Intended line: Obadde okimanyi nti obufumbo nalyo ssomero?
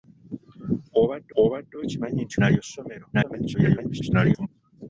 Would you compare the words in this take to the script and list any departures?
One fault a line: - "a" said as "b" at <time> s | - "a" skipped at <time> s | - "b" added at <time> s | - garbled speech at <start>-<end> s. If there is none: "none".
- "obadde" added at 1.4 s
- "obufumbo" skipped at 2.4 s
- garbled speech at 3.1-4.5 s